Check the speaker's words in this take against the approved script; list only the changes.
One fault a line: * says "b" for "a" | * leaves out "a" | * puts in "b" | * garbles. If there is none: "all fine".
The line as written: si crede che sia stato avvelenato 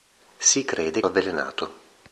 * leaves out "che sia stato"